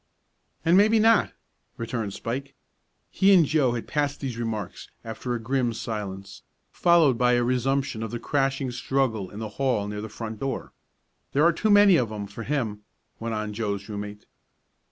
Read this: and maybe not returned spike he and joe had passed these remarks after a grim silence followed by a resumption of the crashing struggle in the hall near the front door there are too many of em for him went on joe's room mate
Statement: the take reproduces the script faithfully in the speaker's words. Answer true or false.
true